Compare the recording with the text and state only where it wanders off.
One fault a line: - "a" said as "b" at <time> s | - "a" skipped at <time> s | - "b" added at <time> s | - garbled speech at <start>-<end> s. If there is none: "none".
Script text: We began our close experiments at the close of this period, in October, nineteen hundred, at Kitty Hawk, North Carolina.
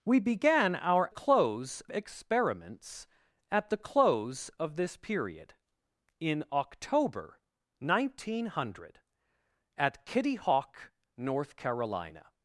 none